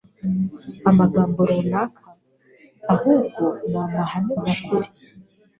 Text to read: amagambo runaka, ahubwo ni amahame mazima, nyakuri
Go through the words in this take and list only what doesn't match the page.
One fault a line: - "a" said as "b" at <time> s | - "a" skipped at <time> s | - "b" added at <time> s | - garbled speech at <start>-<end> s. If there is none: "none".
- "mazima" skipped at 4.3 s